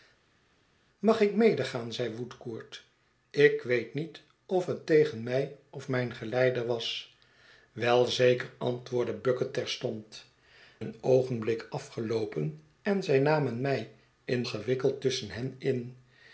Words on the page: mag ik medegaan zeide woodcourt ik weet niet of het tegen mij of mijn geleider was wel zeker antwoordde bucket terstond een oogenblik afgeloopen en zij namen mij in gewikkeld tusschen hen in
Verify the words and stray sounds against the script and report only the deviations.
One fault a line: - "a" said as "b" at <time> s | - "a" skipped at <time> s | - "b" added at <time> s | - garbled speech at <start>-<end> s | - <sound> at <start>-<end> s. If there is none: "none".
none